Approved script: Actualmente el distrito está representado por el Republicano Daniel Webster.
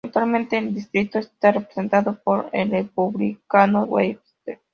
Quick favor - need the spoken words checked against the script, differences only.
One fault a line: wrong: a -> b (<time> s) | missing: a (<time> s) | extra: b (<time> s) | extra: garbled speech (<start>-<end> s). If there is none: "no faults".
missing: Daniel (3.8 s)